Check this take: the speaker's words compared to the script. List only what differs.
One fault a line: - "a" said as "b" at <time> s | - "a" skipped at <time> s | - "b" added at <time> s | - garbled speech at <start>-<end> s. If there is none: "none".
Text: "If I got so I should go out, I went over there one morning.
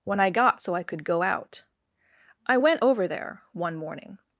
- "If" said as "When" at 0.0 s
- "should" said as "could" at 0.8 s